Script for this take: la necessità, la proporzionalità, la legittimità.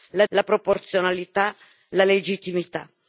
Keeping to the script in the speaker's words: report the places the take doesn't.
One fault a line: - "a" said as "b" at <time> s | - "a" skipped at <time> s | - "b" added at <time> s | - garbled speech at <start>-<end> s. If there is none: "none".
- "necessità" skipped at 0.2 s